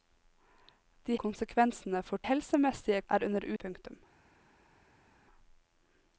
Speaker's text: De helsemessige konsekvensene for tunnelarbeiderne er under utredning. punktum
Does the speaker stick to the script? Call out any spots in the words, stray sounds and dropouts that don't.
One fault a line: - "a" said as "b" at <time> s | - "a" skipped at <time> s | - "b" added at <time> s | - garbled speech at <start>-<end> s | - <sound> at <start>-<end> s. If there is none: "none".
- "helsemessige" skipped at 1.2 s
- "tunnelarbeiderne" said as "helsemessige" at 2.3 s
- "utredning" skipped at 3.5 s